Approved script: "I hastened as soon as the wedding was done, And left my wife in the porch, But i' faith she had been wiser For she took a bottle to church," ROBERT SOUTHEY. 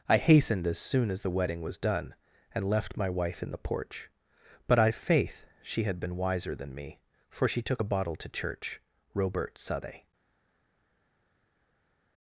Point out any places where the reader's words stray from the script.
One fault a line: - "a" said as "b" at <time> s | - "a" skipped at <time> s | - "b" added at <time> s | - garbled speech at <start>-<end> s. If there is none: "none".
- "than me" added at 6.5 s